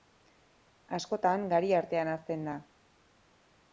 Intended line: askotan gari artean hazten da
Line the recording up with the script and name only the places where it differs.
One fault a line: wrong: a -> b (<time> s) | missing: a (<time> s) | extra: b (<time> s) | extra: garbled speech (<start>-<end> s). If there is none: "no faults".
no faults